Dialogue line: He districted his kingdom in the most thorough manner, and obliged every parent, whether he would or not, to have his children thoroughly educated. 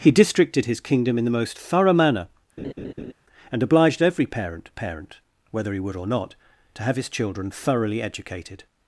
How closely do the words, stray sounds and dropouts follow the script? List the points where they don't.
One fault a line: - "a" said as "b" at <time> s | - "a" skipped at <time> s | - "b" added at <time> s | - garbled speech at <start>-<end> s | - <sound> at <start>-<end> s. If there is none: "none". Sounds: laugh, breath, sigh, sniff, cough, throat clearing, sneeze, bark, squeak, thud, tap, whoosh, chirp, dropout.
- laugh at 2.6-3.1 s
- "parent" added at 4.8 s